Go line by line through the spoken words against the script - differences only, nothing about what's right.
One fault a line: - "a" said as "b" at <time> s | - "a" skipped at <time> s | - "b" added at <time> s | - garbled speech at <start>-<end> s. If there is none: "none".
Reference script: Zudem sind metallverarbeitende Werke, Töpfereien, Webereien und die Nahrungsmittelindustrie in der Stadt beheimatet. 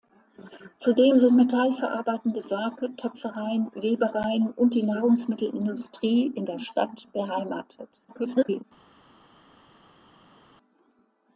- garbled speech at 8.1-8.6 s